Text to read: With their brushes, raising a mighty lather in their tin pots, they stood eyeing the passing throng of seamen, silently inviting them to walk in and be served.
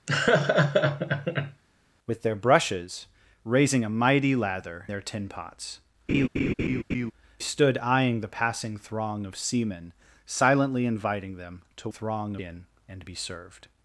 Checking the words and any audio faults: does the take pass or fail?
fail